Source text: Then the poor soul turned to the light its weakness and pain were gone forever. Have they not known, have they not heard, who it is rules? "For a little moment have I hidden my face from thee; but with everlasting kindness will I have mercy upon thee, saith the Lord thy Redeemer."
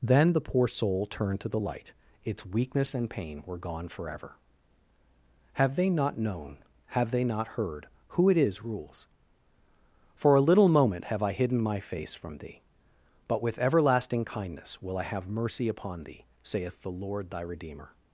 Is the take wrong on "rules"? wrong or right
right